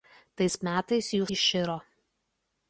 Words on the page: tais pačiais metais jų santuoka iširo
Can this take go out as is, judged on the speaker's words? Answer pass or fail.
fail